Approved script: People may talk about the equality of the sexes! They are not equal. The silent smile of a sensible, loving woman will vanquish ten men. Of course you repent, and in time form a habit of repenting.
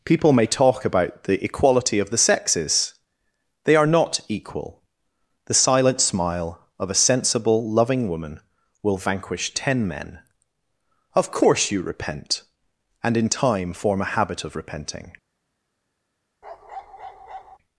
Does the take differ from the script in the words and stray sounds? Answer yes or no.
yes